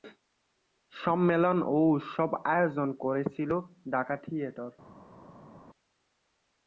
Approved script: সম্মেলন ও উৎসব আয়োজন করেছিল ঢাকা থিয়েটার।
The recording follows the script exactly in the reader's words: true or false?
true